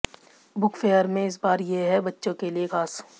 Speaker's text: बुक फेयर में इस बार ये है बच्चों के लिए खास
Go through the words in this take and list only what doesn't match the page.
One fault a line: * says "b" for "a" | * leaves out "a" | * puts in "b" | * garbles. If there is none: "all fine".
all fine